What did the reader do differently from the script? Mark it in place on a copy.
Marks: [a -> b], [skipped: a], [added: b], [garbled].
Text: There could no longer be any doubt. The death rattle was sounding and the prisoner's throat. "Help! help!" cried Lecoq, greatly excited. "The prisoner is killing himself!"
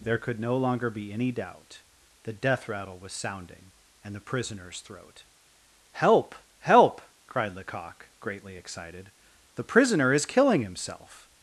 There could no longer be any doubt. The death rattle was sounding and the prisoner's throat. "Help! help!" cried Lecoq, greatly excited. "The prisoner is killing himself!"